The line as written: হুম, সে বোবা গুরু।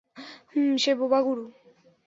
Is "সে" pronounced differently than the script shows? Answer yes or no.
no